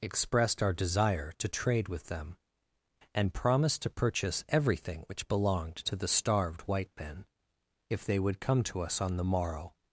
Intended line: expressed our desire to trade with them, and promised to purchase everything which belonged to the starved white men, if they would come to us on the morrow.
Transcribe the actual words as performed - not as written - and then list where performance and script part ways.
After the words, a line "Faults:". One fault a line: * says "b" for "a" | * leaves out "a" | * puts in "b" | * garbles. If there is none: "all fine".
expressed our desire to trade with them, and promised to purchase everything which belonged to the starved white men, if they would come to us on the morrow.
Faults:
all fine